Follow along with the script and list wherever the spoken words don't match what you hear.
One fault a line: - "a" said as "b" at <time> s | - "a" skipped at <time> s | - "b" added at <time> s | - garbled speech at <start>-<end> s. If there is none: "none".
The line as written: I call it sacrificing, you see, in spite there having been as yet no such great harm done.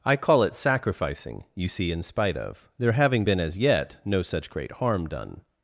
- "of" added at 2.4 s